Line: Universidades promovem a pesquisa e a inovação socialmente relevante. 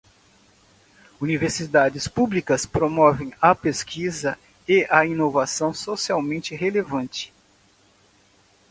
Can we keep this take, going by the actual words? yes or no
no